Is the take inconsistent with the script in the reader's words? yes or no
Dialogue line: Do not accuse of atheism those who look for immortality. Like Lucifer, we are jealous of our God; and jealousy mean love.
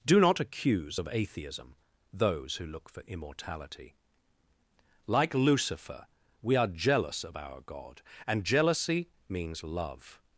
yes